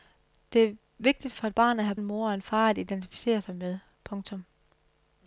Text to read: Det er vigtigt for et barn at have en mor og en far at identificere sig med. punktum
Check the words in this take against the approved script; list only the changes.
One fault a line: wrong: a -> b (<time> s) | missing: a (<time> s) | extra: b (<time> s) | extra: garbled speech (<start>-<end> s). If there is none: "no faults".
no faults